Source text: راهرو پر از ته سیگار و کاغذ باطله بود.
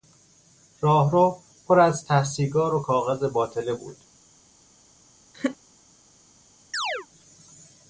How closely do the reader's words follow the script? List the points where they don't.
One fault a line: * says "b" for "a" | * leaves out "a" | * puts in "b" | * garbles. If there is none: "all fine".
all fine